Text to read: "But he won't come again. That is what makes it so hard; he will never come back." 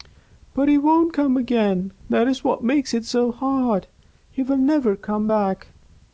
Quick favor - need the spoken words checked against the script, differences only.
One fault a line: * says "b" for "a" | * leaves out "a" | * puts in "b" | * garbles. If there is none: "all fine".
all fine